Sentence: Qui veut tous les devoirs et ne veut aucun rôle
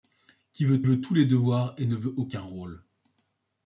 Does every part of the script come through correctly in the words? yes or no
no